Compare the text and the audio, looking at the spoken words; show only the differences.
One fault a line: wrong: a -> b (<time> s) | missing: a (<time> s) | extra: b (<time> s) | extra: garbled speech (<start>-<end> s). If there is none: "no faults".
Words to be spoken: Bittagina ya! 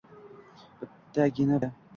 no faults